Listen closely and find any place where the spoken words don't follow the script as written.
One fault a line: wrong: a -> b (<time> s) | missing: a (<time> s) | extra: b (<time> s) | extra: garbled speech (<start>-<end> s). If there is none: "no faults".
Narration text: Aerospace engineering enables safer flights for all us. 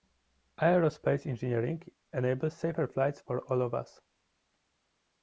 extra: of (3.6 s)